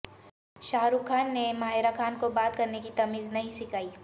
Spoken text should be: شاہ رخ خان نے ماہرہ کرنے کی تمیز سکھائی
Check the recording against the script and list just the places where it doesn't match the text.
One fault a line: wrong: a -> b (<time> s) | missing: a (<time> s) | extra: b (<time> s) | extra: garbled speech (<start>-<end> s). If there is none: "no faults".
extra: خان کو بات (2.0 s)
extra: نہیں (3.3 s)